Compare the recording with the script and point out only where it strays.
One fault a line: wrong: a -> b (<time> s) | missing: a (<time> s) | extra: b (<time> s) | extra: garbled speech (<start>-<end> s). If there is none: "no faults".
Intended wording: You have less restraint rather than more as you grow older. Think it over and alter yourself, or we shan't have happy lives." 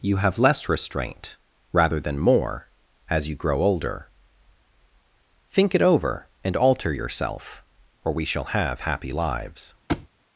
wrong: shan't -> shall (8.2 s)